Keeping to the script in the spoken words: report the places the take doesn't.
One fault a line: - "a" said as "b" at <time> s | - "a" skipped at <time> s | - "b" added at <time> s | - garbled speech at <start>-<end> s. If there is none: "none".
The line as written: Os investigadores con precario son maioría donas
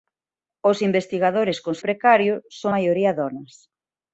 none